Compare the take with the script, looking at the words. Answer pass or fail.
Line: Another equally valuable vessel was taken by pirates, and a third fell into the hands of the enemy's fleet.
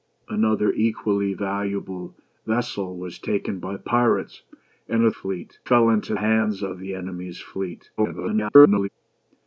fail